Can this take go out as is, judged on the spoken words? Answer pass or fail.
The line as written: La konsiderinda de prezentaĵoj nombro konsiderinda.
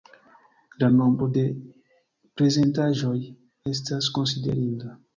fail